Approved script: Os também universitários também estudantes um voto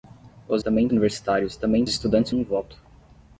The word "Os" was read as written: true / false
true